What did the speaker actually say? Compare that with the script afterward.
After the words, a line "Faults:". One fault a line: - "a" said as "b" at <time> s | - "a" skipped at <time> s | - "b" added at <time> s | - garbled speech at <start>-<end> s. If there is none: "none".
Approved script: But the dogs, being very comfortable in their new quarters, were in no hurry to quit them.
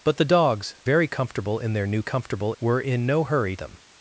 But the dogs, very comfortable in their new comfortable, were in no hurry them.
Faults:
- "being" skipped at 0.8 s
- "quarters" said as "comfortable" at 2.0 s
- "to quit" skipped at 3.6 s